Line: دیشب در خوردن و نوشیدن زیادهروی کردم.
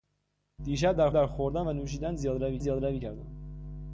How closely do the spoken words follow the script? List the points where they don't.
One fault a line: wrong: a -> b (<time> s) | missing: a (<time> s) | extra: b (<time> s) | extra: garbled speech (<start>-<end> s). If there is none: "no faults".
extra: در (1.1 s)
extra: زیادهروی (2.6 s)